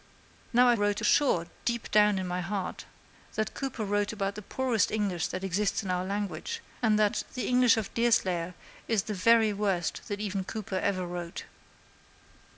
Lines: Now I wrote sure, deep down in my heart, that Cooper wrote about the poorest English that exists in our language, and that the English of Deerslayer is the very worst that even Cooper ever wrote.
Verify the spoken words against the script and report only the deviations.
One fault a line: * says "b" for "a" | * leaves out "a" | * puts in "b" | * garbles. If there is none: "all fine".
all fine